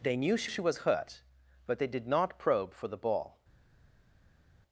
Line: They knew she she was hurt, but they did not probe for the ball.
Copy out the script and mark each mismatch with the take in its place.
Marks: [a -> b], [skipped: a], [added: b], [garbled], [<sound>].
They knew she she was hurt, but they did not probe for the ball.